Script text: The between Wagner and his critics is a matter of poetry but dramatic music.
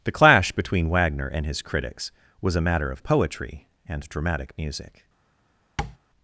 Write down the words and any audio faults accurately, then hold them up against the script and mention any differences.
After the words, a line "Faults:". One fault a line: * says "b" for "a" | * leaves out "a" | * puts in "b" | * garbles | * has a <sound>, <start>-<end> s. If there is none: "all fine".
The clash between Wagner and his critics was a matter of poetry and dramatic music.
Faults:
* puts in "clash"
* says "was" for "is"
* says "and" for "but"
* has a tap, 5.8-6.0 s